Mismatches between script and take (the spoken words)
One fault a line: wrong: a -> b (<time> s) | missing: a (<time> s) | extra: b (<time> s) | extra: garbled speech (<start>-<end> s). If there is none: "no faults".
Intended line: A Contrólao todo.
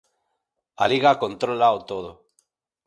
extra: Liga (0.9 s)